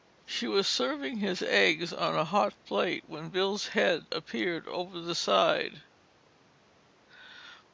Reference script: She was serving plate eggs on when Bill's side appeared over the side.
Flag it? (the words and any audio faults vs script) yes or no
yes